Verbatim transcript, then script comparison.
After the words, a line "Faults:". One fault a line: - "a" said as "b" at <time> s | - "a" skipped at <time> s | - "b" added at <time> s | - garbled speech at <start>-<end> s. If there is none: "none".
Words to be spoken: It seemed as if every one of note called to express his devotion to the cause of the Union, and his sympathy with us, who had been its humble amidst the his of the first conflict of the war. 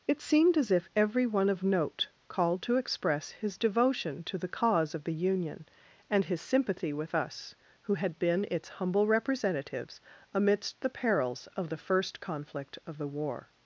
It seemed as if every one of note called to express his devotion to the cause of the Union, and his sympathy with us, who had been its humble representatives amidst the perils of the first conflict of the war.
Faults:
- "representatives" added at 9.1 s
- "his" said as "perils" at 10.9 s